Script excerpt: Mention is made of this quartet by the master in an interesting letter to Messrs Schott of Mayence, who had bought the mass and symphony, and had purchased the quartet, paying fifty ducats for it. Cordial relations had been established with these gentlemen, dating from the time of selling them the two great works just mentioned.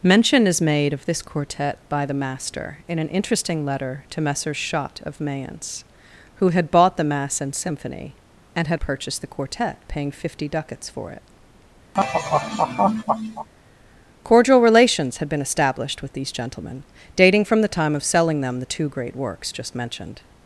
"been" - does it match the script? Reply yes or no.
yes